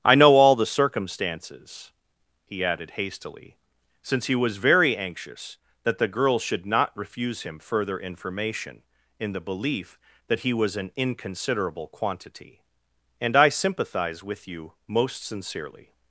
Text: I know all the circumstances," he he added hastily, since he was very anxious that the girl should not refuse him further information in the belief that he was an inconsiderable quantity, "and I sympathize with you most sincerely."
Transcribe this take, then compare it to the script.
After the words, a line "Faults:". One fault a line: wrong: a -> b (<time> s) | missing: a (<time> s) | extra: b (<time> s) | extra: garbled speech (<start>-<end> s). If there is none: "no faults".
I know all the circumstances," he added hastily, since he was very anxious that the girl should not refuse him further information in the belief that he was an inconsiderable quantity, "and I sympathize with you most sincerely."
Faults:
missing: he (2.6 s)